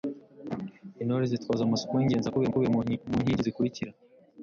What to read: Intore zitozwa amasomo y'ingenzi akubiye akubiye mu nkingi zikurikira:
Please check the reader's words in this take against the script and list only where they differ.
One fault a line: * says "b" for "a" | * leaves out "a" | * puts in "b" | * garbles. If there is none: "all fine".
all fine